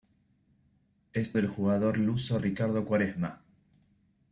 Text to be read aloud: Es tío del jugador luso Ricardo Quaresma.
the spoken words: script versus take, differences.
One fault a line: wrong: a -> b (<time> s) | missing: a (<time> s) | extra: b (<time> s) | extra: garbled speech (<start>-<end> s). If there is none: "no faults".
missing: tío (1.4 s)